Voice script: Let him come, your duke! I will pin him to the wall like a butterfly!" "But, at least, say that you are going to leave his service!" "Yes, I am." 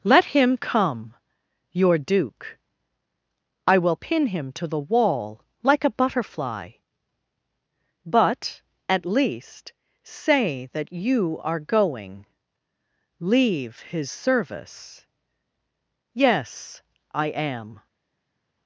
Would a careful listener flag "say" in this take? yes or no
no